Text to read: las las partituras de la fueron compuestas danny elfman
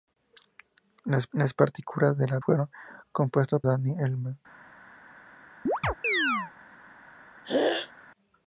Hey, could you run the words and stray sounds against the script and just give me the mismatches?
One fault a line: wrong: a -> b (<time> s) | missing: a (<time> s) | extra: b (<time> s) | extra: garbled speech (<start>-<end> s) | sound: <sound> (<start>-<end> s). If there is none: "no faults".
sound: chirp (5.7-6.5 s)
sound: throat clearing (7.4-7.9 s)